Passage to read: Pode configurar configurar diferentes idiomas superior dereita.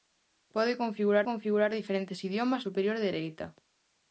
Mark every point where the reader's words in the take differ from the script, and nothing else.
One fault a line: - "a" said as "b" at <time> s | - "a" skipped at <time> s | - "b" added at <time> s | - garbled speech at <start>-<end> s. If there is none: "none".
none